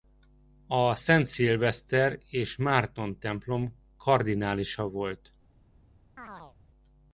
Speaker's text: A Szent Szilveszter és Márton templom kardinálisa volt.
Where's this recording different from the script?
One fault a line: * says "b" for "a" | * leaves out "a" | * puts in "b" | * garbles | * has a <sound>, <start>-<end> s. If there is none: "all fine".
* has a chirp, 6.2-6.6 s